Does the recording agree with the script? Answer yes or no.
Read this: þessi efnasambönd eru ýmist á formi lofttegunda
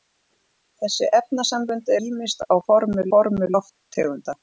no